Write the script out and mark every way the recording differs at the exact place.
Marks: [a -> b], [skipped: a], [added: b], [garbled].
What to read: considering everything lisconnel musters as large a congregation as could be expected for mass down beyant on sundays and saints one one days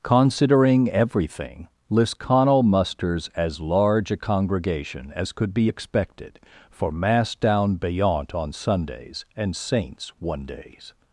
considering everything lisconnel musters as large a congregation as could be expected for mass down beyant on sundays and saints one [skipped: one] days